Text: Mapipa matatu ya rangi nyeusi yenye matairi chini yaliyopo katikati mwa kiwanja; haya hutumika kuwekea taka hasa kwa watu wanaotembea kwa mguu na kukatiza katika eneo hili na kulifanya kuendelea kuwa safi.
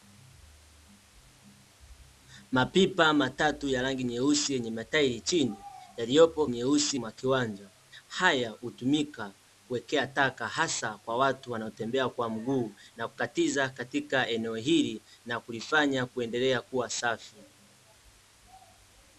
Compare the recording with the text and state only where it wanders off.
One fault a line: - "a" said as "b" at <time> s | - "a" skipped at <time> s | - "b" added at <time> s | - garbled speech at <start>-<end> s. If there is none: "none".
- "katikati" said as "nyeusi" at 6.5 s